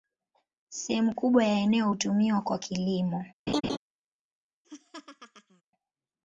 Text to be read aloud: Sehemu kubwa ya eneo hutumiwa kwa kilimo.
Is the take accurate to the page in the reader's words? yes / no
yes